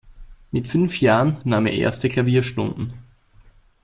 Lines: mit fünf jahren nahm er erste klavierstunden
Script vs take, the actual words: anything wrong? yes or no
no